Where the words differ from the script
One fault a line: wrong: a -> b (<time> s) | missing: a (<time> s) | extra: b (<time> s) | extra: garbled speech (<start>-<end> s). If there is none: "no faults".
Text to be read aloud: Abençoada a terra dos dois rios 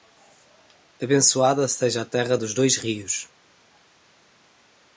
extra: seja (1.7 s)